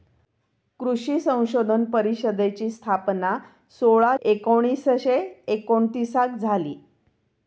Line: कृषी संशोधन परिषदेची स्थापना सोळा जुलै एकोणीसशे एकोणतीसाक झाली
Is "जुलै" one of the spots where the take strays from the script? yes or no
yes